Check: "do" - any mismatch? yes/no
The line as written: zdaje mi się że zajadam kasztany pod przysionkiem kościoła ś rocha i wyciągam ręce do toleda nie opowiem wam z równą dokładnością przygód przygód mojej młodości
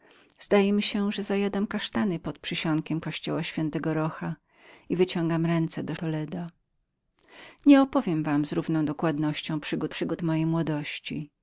no